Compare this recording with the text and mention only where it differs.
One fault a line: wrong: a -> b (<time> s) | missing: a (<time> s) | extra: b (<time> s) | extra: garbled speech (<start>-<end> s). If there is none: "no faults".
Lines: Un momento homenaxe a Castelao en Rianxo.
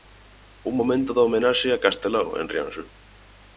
extra: da (1.1 s)